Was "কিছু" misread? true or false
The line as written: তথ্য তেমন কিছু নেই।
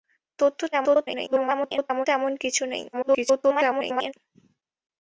false